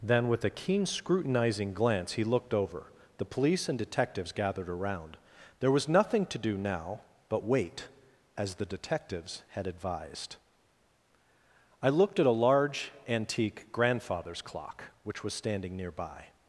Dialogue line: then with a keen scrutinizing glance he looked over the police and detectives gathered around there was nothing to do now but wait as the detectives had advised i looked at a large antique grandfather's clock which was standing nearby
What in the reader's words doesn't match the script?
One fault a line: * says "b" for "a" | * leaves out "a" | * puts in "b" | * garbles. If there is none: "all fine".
all fine